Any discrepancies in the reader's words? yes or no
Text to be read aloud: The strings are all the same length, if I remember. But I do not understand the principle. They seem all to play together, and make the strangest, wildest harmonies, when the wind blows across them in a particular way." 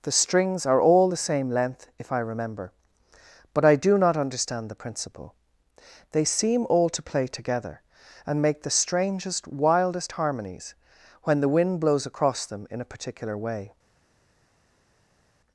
no